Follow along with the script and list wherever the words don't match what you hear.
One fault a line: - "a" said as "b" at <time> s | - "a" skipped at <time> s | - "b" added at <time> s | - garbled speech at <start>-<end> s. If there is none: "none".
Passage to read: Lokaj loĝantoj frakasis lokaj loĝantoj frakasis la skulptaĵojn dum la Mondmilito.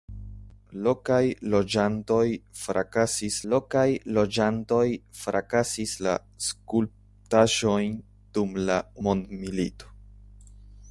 none